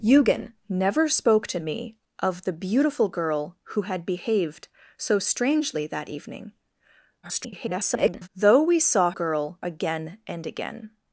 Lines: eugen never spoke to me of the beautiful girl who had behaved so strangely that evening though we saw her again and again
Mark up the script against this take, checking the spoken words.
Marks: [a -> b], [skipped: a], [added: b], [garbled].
eugen never spoke to me of the beautiful girl who had behaved so strangely that evening [garbled] though we saw [her -> girl] again and again